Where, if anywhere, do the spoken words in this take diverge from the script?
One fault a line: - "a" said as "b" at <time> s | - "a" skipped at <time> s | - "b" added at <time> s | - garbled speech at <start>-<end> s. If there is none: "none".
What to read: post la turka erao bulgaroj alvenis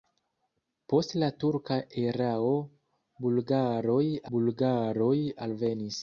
- "bulgaroj" added at 4.4 s